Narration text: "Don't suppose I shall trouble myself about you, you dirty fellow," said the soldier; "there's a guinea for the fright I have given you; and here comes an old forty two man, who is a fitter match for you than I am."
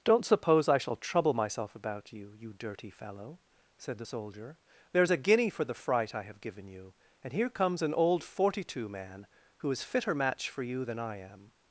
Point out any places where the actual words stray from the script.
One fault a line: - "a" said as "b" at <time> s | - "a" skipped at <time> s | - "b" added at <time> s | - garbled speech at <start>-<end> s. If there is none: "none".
- "a" skipped at 9.8 s